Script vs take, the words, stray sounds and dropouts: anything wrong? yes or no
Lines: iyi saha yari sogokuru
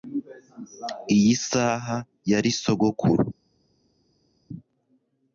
no